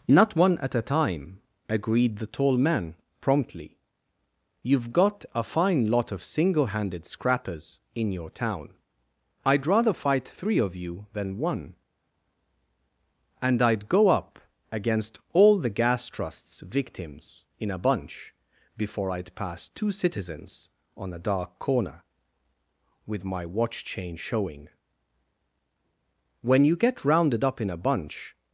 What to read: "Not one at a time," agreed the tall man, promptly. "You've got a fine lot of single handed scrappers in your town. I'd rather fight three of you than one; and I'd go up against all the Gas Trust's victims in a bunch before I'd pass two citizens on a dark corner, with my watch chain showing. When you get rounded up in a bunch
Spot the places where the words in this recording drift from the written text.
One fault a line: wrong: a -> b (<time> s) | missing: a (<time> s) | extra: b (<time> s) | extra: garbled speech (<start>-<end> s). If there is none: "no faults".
no faults